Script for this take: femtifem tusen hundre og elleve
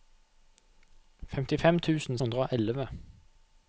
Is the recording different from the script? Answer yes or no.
no